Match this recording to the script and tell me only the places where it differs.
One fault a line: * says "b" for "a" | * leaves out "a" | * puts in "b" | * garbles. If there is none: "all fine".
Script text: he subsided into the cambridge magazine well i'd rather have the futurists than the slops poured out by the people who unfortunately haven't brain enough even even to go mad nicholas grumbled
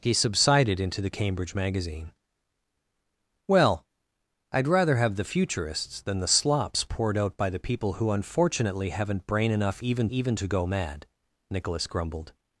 all fine